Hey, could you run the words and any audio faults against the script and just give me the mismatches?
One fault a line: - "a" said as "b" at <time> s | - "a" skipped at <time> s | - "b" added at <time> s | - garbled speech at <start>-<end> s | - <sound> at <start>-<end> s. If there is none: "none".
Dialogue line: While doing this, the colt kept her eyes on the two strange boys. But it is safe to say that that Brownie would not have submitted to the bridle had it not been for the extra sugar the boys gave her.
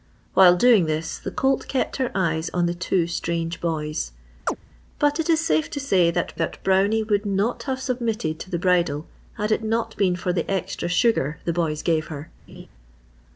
- chirp at 4.5-4.6 s
- laugh at 12.5-12.7 s